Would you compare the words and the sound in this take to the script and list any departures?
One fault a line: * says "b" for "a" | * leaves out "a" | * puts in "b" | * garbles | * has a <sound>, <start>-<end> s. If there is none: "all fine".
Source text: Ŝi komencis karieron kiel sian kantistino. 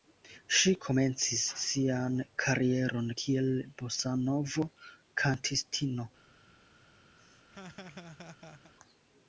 * puts in "sian"
* says "bosanovo" for "sian"
* has a laugh, 7.2-8.7 s